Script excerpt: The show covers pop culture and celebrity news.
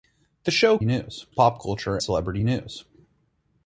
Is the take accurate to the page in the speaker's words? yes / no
no